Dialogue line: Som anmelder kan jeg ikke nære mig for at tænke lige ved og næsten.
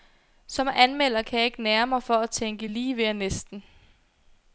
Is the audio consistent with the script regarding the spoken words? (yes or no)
yes